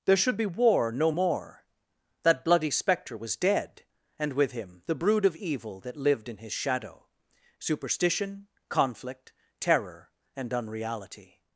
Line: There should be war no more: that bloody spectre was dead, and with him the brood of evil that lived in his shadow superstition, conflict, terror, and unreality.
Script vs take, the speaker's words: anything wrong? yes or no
no